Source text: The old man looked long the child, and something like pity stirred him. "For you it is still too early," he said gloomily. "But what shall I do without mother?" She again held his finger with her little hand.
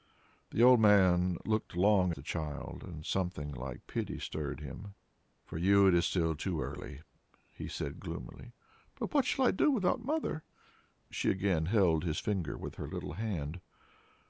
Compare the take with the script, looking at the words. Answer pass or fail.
pass